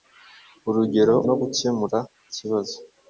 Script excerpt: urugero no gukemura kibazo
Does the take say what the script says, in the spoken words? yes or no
yes